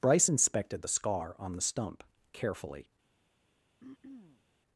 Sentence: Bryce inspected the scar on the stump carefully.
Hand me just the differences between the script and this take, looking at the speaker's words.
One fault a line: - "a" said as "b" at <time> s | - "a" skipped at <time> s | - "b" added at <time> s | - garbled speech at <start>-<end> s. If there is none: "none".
none